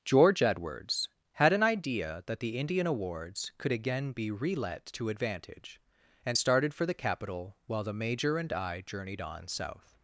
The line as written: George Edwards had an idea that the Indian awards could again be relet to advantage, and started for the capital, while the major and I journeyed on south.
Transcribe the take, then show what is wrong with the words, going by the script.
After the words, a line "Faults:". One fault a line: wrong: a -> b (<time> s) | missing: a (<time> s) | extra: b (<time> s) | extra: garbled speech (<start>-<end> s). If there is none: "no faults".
George Edwards had an idea that the Indian awards could again be relet to advantage, and started for the capital, while the major and I journeyed on south.
Faults:
no faults